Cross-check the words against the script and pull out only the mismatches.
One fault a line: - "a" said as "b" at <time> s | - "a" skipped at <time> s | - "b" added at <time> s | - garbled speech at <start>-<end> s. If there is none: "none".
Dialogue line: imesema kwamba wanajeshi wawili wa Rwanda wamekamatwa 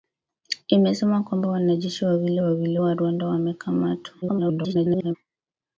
- "wawili" added at 2.4 s
- garbled speech at 4.2-5.2 s